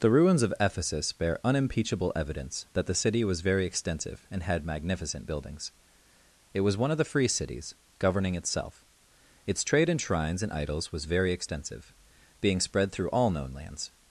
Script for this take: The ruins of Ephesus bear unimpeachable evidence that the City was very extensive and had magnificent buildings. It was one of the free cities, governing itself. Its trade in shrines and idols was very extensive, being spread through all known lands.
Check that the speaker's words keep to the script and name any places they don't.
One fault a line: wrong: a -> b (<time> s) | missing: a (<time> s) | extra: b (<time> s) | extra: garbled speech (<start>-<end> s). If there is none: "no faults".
no faults